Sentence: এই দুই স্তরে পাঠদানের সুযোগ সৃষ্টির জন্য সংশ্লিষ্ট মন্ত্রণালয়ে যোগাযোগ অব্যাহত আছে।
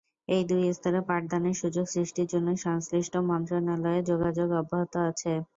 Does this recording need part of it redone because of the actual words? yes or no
no